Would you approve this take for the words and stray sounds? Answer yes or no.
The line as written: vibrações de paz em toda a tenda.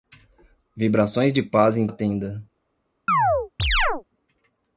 no